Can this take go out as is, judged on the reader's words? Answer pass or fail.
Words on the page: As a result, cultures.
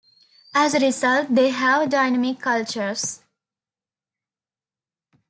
fail